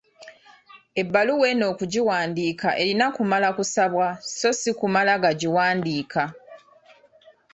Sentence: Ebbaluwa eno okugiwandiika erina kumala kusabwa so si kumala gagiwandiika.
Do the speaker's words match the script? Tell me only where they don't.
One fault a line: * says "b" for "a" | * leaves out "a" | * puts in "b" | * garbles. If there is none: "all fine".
all fine